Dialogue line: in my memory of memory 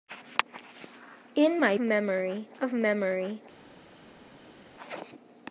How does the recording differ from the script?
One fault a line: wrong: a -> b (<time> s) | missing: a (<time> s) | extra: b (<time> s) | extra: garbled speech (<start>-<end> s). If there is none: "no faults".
no faults